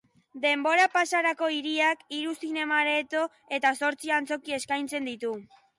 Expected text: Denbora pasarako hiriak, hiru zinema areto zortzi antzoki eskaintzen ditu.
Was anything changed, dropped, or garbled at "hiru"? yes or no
no